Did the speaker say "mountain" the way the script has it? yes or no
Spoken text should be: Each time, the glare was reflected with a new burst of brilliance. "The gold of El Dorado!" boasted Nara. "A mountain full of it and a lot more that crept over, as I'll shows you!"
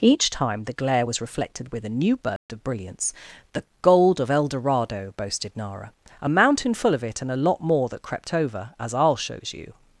yes